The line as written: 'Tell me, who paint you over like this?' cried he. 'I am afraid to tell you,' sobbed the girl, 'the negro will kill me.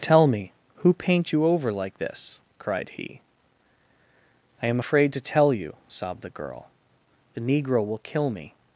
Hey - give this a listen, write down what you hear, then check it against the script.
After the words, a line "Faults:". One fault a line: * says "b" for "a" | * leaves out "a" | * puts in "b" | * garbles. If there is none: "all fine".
'Tell me, who paint you over like this?' cried he. 'I am afraid to tell you,' sobbed the girl, 'the negro will kill me.
Faults:
all fine